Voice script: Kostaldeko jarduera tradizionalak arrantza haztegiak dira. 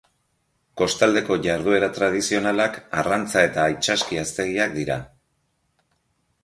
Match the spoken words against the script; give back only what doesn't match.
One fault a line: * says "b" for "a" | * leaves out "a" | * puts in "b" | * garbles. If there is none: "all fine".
* puts in "eta itsaski"